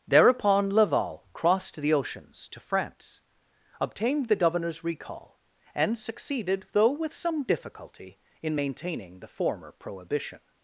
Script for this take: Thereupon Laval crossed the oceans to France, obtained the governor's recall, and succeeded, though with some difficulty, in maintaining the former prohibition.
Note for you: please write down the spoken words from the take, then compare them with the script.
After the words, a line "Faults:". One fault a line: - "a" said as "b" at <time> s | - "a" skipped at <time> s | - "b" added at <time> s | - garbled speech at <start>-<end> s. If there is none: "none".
Thereupon Laval crossed the oceans to France, obtained the governor's recall, and succeeded, though with some difficulty, in maintaining the former prohibition.
Faults:
none